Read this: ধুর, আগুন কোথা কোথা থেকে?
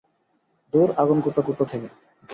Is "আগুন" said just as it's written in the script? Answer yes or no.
yes